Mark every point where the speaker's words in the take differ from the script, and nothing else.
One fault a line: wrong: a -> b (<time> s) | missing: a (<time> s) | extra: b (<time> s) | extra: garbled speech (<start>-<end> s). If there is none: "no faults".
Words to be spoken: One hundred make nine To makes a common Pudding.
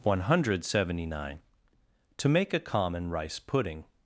wrong: make -> seventy (0.7 s)
wrong: makes -> make (2.3 s)
extra: Rice (3.1 s)